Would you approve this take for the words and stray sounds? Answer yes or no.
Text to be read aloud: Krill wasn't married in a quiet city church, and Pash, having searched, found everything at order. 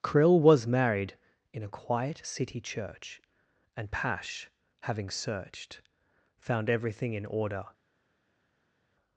no